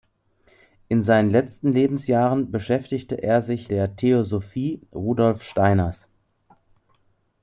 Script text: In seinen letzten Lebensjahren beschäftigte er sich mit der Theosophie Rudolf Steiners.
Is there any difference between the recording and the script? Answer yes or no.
yes